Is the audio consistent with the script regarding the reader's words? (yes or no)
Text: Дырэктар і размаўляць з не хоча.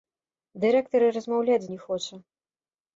yes